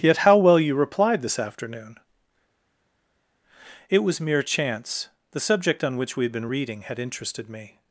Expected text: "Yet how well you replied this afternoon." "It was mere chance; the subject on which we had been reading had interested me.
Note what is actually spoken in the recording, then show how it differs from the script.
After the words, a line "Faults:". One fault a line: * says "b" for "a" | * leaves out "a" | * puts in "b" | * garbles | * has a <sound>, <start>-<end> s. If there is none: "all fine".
"Yet how well you replied this afternoon." "It was mere chance; the subject on which we had been reading had interested me.
Faults:
all fine